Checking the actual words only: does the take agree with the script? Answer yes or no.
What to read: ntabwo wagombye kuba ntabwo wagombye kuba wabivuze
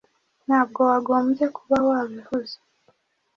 no